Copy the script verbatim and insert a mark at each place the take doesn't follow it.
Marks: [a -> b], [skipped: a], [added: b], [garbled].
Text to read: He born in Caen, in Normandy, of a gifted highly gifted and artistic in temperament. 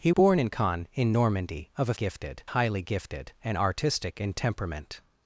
He born in Caen, in Normandy, of a gifted highly gifted and artistic in temperament.